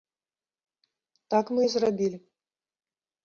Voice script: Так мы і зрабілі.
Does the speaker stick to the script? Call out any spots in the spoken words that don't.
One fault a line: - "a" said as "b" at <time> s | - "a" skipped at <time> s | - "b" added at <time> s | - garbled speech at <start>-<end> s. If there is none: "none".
none